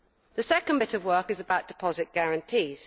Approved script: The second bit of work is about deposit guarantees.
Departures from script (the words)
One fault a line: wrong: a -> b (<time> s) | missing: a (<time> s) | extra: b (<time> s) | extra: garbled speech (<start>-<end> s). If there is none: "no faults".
no faults